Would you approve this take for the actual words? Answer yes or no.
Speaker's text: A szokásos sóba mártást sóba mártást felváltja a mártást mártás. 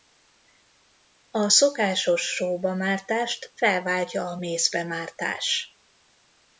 no